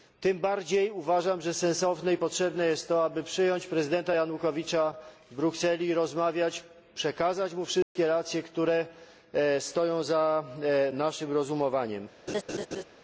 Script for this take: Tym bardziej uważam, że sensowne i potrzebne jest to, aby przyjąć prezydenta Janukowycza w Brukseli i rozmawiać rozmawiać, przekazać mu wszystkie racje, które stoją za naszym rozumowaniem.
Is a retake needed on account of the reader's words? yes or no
yes